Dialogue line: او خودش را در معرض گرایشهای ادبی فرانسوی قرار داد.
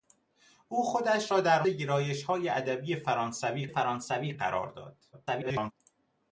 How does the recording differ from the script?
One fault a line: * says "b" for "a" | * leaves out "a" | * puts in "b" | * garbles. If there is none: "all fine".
* leaves out "معرض"
* puts in "فرانسوی"
* garbles